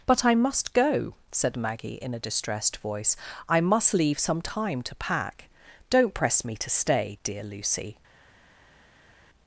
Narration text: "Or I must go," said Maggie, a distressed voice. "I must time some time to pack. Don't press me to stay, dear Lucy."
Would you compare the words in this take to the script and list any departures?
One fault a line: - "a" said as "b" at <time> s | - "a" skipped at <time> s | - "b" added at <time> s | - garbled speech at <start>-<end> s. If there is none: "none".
- "Or" said as "But" at 0.1 s
- "in" added at 2.0 s
- "time" said as "leave" at 3.9 s